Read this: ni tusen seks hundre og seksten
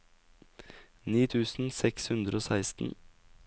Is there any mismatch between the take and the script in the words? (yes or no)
no